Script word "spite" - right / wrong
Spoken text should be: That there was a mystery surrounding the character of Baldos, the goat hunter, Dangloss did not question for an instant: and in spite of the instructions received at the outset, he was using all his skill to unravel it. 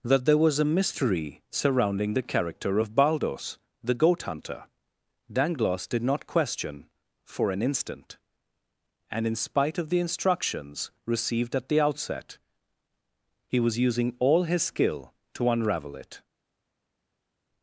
right